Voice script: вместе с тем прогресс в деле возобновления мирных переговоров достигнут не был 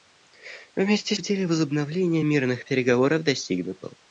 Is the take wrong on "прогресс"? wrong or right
wrong